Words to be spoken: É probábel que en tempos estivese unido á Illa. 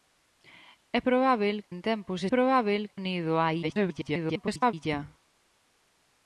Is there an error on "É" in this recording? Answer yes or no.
no